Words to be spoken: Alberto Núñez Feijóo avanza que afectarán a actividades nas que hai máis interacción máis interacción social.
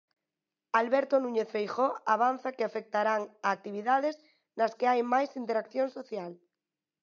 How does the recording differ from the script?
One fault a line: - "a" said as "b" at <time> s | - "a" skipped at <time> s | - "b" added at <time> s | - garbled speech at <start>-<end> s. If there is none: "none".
- "máis interacción" skipped at 5.9 s